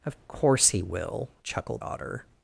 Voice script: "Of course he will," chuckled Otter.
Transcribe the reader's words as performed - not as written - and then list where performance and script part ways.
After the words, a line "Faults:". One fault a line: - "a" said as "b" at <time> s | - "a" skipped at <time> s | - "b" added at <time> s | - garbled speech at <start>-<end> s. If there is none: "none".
"Of course he will," chuckled Otter.
Faults:
none